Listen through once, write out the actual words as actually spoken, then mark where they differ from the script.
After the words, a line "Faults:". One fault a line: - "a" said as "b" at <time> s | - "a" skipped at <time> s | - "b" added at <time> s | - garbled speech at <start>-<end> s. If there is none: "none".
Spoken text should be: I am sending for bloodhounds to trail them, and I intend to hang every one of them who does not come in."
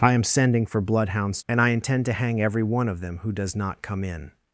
I am sending for bloodhounds and I intend to hang every one of them who does not come in."
Faults:
- "to trail them" skipped at 1.4 s